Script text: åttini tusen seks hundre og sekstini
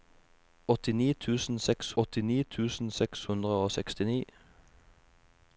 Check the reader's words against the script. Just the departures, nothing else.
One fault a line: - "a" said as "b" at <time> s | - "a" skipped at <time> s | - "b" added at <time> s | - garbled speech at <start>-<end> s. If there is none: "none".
- "åttini tusen seks" added at 2.0 s